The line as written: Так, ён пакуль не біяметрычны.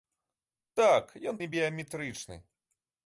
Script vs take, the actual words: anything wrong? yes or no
yes